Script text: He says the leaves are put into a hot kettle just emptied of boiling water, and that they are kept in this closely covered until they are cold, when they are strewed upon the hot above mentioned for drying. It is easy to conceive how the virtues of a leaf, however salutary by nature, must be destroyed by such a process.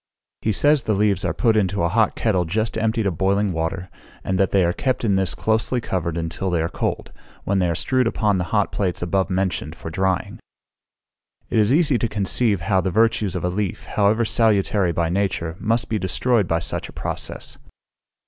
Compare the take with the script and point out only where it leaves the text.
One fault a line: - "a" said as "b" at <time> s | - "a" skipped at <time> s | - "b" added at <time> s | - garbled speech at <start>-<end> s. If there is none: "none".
- "plates" added at 8.7 s